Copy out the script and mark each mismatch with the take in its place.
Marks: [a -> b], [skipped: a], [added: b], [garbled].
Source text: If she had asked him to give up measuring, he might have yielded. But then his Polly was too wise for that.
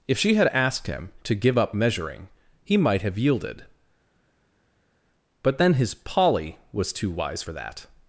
If she had asked him to give up measuring, he might have yielded. But then his Polly was too wise for that.